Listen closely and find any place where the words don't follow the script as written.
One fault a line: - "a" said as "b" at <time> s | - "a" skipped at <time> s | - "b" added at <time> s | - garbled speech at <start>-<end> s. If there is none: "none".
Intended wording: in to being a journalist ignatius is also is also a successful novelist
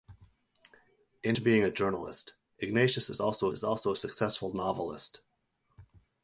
none